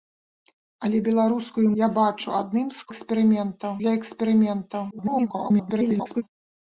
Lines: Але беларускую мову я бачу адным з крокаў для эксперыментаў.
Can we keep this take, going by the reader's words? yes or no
no